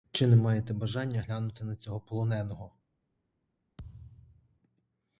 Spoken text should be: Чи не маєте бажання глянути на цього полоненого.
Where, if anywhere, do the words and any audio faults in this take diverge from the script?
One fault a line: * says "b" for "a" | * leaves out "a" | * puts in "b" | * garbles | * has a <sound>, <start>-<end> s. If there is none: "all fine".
* has a thud, 3.8-4.6 s